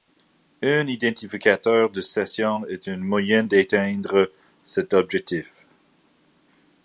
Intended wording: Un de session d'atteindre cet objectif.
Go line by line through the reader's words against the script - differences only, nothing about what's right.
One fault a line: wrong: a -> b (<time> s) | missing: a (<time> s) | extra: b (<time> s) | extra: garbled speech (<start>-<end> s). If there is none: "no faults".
extra: identificateur (0.9 s)
extra: est un moyen (2.6 s)